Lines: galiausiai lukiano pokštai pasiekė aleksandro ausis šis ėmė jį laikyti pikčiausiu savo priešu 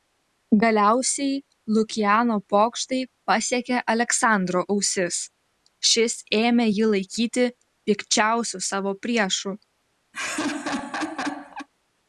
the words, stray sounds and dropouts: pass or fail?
fail